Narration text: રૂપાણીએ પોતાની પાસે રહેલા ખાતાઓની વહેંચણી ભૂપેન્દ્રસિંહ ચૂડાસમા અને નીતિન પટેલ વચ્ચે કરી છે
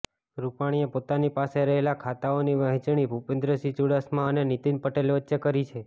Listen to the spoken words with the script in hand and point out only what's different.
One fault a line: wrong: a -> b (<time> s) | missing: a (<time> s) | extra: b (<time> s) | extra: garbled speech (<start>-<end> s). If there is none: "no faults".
no faults